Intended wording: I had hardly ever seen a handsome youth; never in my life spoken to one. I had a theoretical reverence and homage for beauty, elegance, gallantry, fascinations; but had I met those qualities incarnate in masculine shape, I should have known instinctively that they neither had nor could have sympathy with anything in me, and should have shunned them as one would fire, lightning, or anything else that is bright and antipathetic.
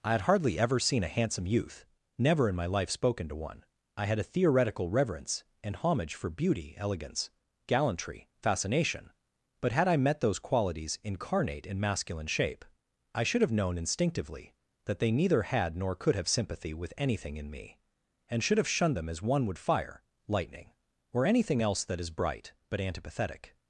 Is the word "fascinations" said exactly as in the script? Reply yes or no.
no